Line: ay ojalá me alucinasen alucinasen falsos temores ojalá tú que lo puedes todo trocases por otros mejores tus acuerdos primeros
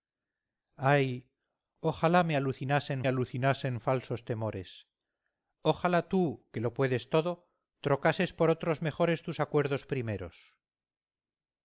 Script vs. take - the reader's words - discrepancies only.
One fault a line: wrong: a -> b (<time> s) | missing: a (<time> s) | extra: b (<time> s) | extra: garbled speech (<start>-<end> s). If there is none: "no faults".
no faults